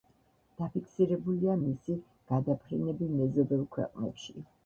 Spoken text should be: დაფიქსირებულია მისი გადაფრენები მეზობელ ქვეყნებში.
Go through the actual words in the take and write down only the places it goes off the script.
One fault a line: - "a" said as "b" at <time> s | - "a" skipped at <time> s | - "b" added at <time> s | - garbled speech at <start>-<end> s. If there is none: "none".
none